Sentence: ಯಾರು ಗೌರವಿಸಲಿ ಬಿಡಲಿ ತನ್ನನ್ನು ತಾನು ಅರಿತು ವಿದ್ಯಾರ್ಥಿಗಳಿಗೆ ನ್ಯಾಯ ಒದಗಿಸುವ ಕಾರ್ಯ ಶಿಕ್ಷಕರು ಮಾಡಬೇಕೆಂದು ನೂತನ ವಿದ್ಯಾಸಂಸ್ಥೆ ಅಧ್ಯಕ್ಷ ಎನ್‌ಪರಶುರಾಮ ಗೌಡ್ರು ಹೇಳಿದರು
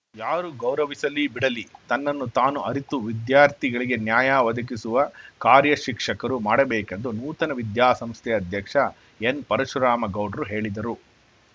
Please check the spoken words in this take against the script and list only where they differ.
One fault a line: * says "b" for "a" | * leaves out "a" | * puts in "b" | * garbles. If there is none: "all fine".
all fine